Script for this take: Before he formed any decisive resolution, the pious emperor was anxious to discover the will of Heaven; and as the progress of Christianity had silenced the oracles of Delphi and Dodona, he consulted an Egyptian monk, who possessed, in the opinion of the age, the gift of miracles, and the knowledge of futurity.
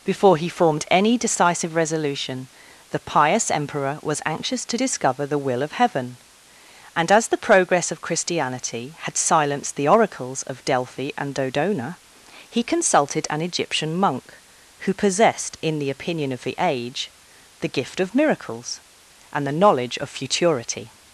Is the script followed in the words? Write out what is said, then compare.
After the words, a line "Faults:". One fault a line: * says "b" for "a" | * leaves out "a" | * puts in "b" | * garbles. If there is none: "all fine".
Before he formed any decisive resolution, the pious emperor was anxious to discover the will of Heaven; and as the progress of Christianity had silenced the oracles of Delphi and Dodona, he consulted an Egyptian monk, who possessed, in the opinion of the age, the gift of miracles, and the knowledge of futurity.
Faults:
all fine